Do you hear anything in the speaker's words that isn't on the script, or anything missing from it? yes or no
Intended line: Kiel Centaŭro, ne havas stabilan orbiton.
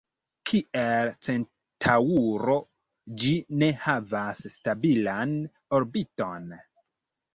yes